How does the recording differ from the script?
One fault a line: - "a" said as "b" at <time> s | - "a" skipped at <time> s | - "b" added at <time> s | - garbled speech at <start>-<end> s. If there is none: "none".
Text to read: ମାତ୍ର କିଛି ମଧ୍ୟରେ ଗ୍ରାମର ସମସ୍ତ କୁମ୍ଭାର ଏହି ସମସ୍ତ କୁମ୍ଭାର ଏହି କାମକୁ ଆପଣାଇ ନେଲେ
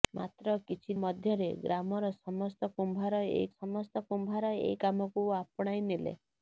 none